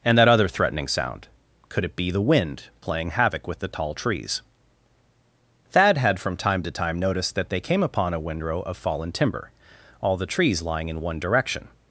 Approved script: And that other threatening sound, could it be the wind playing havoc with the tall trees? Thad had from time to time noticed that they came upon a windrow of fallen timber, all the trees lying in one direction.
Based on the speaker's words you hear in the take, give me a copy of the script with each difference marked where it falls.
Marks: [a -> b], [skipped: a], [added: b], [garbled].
And that other threatening sound, could it be the wind playing havoc with the tall trees? Thad had from time to time noticed that they came upon a windrow of fallen timber, all the trees lying in one direction.